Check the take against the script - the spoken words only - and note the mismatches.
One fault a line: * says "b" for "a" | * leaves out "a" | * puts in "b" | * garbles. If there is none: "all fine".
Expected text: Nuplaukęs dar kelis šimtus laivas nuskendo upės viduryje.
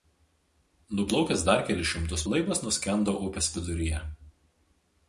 all fine